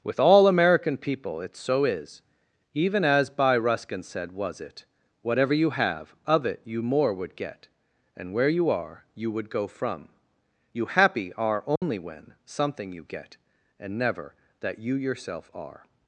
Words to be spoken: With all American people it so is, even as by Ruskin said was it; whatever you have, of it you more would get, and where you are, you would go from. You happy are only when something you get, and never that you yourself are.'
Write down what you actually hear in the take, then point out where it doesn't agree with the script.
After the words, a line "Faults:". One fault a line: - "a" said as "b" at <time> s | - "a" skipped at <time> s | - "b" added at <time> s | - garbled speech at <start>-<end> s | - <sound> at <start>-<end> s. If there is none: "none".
With all American people it so is, even as by Ruskin said was it; whatever you have, of it you more would get, and where you are, you would go from. You happy are only when something you get, and never that you yourself are.'
Faults:
- dropout at 11.8-11.8 s